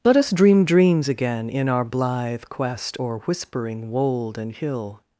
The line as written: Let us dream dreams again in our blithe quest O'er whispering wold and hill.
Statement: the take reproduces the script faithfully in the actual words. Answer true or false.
true